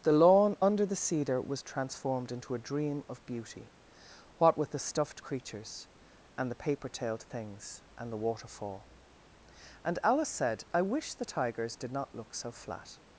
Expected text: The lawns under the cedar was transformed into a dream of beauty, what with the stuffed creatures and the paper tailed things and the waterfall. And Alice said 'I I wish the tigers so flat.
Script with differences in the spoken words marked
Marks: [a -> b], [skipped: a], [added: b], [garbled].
The [lawns -> lawn] under the cedar was transformed into a dream of beauty, what with the stuffed creatures and the paper tailed things and the waterfall. And Alice said 'I [skipped: I] wish the tigers [added: did not look] so flat.